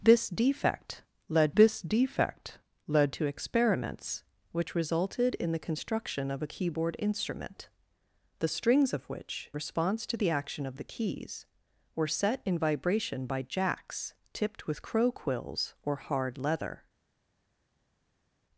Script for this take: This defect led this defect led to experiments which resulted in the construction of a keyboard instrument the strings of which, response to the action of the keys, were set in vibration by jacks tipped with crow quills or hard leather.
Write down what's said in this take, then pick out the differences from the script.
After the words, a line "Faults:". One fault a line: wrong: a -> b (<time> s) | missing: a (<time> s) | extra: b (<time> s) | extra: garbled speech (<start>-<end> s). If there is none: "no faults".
This defect led this defect led to experiments which resulted in the construction of a keyboard instrument the strings of which, response to the action of the keys, were set in vibration by jacks tipped with crow quills or hard leather.
Faults:
no faults